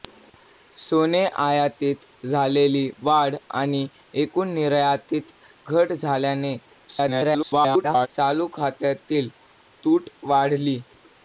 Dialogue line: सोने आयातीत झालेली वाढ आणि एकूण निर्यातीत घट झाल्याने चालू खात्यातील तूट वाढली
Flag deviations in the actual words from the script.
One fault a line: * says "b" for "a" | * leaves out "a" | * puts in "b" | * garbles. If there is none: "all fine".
* garbles